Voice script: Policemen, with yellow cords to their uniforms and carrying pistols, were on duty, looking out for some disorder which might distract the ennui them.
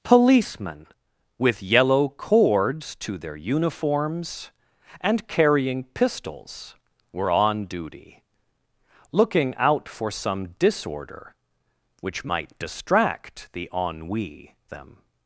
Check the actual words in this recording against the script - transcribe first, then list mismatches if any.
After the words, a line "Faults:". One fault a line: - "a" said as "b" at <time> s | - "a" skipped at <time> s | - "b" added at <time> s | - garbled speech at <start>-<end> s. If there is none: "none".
Policemen, with yellow cords to their uniforms and carrying pistols, were on duty, looking out for some disorder which might distract the ennui them.
Faults:
none